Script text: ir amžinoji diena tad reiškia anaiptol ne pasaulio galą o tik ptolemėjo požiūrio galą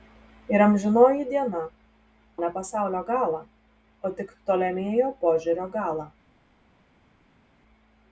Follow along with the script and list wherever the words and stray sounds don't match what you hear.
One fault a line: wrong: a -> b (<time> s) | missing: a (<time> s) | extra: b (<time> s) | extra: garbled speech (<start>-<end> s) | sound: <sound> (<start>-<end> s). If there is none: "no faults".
missing: tad reiškia anaiptol (1.6 s)